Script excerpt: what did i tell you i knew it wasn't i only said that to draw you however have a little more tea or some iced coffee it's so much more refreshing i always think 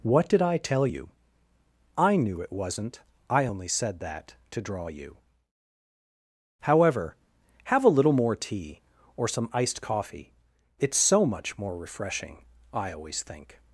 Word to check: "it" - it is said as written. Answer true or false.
true